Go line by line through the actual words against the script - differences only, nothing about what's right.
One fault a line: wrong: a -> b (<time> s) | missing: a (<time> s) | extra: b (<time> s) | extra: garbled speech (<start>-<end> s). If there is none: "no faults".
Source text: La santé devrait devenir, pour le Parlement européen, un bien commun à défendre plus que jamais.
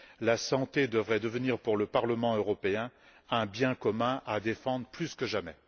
no faults